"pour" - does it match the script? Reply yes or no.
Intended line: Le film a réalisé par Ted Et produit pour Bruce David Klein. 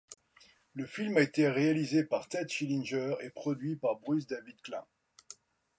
no